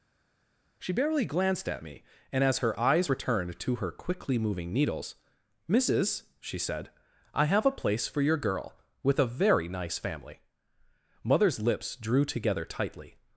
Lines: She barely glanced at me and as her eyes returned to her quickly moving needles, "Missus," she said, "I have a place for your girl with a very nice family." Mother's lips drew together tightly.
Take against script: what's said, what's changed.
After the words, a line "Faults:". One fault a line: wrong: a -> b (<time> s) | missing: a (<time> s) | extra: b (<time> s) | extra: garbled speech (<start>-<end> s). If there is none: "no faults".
She barely glanced at me and as her eyes returned to her quickly moving needles, "Missus," she said, "I have a place for your girl with a very nice family." Mother's lips drew together tightly.
Faults:
no faults